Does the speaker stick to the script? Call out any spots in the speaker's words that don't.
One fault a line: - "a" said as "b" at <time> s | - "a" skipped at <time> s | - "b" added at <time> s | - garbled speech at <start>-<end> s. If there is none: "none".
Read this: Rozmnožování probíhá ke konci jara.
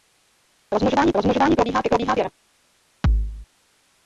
- "rozmnožování" added at 1.2 s
- "konci" said as "probíhá" at 1.9 s